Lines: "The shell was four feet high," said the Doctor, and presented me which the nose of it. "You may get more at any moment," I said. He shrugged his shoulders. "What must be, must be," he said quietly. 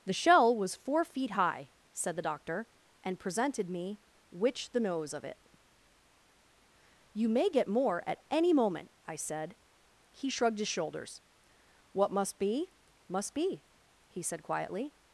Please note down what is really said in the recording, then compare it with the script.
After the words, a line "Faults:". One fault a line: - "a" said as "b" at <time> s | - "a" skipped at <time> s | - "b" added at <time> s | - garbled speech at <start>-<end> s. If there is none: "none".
"The shell was four feet high," said the Doctor, and presented me which the nose of it. "You may get more at any moment," I said. He shrugged his shoulders. "What must be, must be," he said quietly.
Faults:
none